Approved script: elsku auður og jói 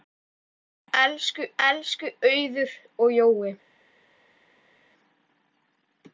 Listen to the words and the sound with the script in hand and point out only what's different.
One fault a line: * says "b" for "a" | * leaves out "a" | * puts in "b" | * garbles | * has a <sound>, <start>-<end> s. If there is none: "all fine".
* puts in "elsku"